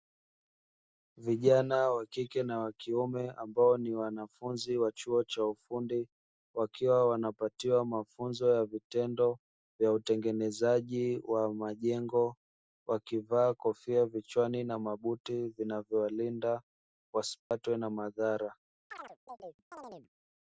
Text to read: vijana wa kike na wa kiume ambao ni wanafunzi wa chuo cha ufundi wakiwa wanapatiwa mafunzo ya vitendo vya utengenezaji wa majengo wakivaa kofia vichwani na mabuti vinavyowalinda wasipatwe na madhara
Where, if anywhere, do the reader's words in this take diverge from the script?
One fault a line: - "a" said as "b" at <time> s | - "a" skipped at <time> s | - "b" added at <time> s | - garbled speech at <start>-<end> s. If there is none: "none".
none